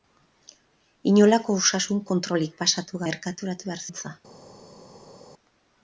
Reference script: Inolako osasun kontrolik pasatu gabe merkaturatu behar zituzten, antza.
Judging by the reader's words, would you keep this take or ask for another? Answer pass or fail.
fail